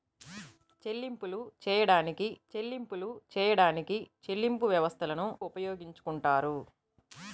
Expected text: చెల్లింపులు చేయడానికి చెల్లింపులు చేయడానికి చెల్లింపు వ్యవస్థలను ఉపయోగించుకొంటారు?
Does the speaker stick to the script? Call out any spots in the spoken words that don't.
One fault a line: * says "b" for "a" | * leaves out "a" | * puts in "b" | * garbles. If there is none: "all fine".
all fine